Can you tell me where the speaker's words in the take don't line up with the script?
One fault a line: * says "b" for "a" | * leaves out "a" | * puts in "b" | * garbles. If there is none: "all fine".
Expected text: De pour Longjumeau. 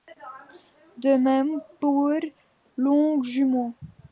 * puts in "même"